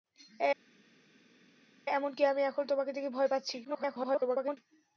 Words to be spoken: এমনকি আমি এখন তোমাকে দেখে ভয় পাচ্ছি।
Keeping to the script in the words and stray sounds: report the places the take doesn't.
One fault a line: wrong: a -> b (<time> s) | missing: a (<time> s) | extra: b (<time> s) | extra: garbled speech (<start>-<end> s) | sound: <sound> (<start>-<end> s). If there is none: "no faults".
extra: garbled speech (3.6-4.6 s)